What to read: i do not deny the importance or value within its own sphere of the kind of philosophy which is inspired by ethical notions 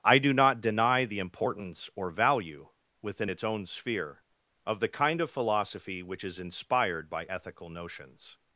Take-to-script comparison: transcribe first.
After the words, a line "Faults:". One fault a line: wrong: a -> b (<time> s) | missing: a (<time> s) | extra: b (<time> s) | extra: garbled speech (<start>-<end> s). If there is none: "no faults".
i do not deny the importance or value within its own sphere of the kind of philosophy which is inspired by ethical notions
Faults:
no faults